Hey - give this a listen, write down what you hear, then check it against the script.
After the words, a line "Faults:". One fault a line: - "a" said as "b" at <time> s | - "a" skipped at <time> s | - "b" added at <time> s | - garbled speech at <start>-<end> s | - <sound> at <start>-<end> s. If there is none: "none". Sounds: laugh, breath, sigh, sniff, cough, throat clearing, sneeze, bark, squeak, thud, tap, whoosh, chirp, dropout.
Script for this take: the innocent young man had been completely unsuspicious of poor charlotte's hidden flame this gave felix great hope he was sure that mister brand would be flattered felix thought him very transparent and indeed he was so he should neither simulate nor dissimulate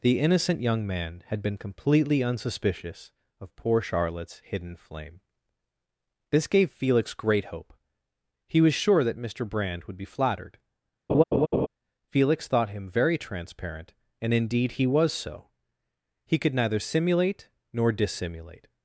the innocent young man had been completely unsuspicious of poor charlotte's hidden flame this gave felix great hope he was sure that mister brand would be flattered felix thought him very transparent and indeed he was so he could neither simulate nor dissimulate
Faults:
- laugh at 11.1-11.7 s
- "should" said as "could" at 16.4 s